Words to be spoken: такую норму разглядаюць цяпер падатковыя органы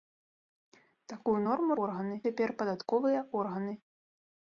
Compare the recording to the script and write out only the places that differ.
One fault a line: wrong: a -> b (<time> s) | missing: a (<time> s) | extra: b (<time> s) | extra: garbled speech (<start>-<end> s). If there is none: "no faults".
wrong: разглядаюць -> органы (1.9 s)